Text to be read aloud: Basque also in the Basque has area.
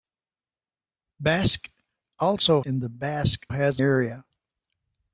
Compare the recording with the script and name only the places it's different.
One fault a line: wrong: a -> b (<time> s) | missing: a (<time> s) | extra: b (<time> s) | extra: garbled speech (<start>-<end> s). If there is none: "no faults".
no faults